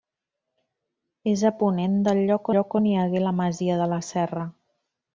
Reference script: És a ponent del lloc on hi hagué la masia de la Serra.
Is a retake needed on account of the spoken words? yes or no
yes